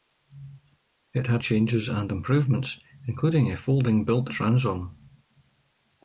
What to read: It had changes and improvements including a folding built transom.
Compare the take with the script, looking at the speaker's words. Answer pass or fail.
pass